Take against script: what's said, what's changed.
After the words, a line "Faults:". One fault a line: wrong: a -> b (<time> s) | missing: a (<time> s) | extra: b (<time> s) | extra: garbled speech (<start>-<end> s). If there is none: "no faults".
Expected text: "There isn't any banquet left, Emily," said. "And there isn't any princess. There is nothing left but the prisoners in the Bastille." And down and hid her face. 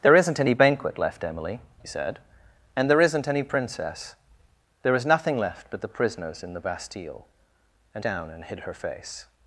"There isn't any banquet left, Emily," said. "And there isn't any princess. There is nothing left but the prisoners in the Bastille." And down and hid her face.
Faults:
no faults